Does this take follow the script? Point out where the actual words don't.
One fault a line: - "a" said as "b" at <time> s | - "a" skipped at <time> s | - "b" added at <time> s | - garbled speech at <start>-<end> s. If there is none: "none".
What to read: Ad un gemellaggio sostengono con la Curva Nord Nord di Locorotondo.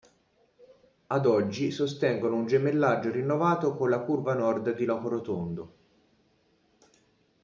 - "oggi sostengono" added at 1.3 s
- "sostengono" said as "rinnovato" at 3.1 s
- "Nord" skipped at 4.7 s